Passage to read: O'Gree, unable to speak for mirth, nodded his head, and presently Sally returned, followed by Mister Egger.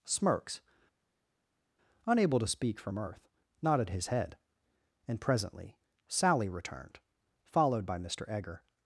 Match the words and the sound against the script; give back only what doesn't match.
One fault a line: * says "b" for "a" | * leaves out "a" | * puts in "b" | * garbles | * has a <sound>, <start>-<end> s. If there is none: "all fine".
* says "Smirks" for "O'Gree"